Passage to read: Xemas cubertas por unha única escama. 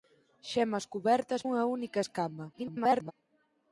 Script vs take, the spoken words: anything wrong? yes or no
yes